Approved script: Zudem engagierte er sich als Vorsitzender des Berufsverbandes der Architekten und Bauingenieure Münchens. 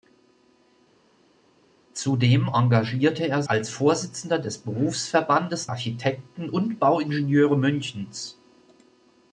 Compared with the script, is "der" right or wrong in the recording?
wrong